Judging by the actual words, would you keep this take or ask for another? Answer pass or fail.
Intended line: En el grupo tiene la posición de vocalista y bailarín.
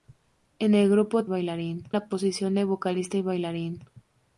fail